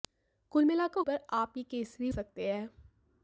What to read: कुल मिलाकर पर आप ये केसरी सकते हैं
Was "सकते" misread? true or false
false